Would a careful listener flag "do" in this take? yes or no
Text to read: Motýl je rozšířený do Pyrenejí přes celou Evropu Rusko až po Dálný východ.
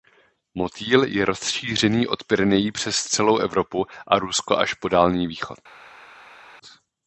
yes